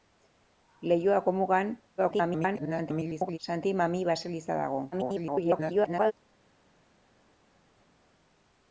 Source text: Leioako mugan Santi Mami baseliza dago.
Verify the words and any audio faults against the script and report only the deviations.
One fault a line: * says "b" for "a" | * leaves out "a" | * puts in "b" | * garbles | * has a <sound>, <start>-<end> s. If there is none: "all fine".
* garbles
* garbles